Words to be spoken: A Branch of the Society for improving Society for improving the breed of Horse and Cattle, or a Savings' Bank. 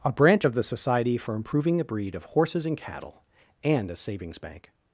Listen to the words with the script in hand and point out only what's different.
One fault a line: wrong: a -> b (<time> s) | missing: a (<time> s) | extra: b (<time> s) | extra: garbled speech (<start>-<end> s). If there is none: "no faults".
missing: Society for improving (1.8 s)
wrong: Horse -> Horses (2.2 s)
wrong: or -> and (3.7 s)